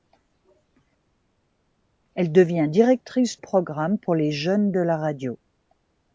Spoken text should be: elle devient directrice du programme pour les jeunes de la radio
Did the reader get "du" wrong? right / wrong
wrong